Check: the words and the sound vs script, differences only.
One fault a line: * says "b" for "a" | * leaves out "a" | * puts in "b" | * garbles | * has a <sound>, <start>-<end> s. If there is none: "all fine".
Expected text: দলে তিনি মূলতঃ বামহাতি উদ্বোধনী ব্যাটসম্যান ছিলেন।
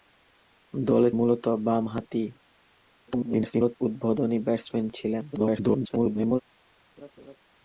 * leaves out "তিনি"
* garbles
* garbles
* has a laugh, 7.0-7.4 s